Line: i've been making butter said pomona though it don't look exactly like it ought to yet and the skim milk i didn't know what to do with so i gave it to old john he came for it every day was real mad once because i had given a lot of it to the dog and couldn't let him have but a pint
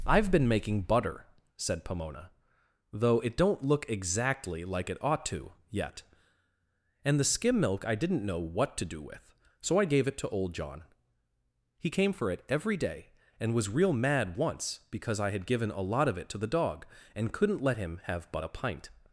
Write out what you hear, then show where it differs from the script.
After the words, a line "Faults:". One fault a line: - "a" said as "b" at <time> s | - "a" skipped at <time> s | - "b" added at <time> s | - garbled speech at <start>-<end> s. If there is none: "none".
i've been making butter said pomona though it don't look exactly like it ought to yet and the skim milk i didn't know what to do with so i gave it to old john he came for it every day and was real mad once because i had given a lot of it to the dog and couldn't let him have but a pint
Faults:
- "and" added at 13.4 s